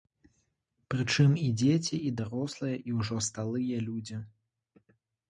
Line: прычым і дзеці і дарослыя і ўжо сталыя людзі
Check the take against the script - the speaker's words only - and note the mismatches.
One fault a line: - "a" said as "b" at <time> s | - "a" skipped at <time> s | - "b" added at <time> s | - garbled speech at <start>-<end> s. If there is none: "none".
none